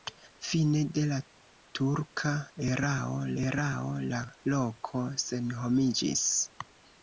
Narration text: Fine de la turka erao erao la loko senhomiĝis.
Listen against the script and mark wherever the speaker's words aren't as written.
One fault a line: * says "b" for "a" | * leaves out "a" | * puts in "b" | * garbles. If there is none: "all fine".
all fine